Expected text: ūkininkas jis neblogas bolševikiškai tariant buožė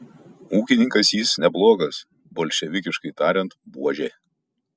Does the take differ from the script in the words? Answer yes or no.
no